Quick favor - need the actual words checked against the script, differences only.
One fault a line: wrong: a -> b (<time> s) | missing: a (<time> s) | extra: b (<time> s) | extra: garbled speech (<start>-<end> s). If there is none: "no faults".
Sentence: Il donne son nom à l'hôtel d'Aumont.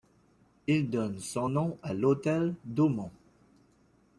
no faults